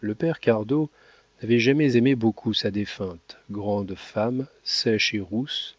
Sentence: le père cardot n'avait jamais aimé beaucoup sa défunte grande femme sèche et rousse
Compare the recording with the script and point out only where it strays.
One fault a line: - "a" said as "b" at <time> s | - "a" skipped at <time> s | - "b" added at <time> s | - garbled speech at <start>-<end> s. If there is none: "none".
none